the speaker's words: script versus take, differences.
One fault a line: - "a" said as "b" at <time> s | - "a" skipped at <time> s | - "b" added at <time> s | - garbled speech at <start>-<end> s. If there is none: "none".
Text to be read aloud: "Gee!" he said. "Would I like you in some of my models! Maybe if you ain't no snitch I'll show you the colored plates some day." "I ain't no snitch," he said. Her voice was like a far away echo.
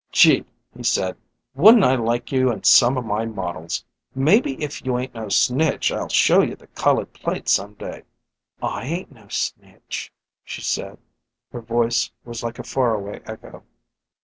- "Would" said as "Wouldn't" at 1.5 s
- "he" said as "she" at 10.4 s